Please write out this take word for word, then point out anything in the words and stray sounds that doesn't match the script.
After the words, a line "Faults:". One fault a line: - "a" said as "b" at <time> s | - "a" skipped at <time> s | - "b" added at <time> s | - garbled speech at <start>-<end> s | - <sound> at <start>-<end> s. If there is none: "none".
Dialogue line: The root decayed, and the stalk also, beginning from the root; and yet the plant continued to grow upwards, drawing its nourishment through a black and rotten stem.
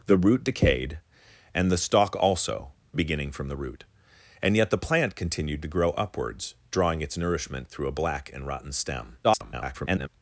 The root decayed, and the stalk also, beginning from the root; and yet the plant continued to grow upwards, drawing its nourishment through a black and rotten stem. [garbled]
Faults:
- garbled speech at 9.2-10.1 s